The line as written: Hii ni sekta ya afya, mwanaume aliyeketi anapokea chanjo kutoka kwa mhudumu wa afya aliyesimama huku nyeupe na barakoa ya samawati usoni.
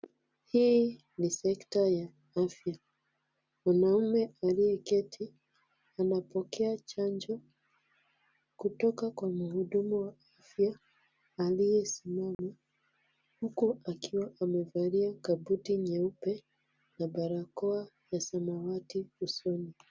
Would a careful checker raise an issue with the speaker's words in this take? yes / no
yes